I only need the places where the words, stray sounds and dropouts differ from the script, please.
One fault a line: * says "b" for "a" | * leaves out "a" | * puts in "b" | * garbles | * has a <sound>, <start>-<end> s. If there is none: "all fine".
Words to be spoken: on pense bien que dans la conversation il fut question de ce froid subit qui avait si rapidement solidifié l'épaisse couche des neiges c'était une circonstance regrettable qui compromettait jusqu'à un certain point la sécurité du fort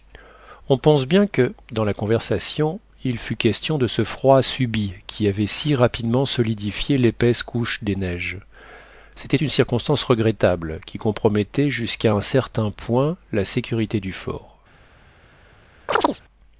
* has a chirp, 15.9-16.2 s